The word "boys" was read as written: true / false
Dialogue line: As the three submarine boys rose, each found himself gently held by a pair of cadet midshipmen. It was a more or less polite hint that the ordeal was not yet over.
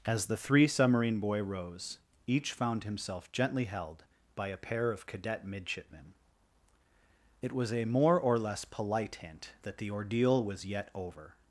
false